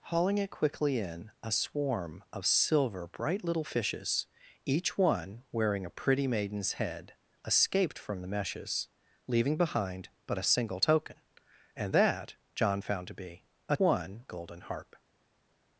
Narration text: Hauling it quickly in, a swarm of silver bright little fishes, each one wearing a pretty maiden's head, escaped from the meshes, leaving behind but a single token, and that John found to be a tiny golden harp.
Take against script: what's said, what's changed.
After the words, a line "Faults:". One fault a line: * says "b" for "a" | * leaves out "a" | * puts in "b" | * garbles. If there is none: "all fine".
Hauling it quickly in, a swarm of silver bright little fishes, each one wearing a pretty maiden's head, escaped from the meshes, leaving behind but a single token, and that John found to be a one golden harp.
Faults:
* says "one" for "tiny"